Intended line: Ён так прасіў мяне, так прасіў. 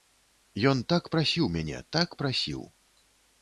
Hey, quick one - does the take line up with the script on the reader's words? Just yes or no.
yes